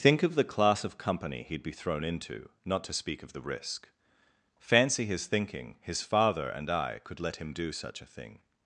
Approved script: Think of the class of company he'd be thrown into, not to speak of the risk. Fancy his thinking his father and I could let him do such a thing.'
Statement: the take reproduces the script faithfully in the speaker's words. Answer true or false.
true